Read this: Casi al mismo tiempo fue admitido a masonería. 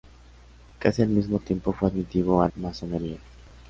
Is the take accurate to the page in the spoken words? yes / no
yes